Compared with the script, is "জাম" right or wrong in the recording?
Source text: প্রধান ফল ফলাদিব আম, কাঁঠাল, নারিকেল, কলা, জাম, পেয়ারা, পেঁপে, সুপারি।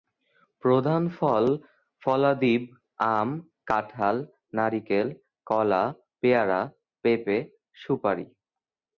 wrong